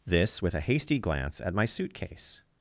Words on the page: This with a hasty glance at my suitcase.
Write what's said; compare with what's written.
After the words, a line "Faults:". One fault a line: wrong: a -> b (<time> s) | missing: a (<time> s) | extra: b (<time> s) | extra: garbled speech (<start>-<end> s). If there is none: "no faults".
This with a hasty glance at my suitcase.
Faults:
no faults